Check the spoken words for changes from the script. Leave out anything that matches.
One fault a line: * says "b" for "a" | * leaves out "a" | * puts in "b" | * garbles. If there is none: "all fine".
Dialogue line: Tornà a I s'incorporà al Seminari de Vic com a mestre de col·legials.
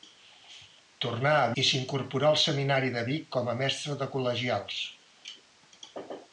all fine